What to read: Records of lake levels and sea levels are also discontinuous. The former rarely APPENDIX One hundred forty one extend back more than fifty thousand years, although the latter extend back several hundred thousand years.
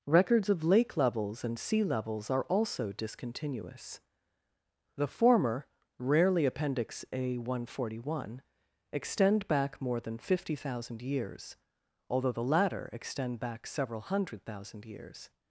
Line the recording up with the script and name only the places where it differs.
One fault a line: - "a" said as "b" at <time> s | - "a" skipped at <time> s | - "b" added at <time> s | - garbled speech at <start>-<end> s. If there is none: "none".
- "A" added at 7.1 s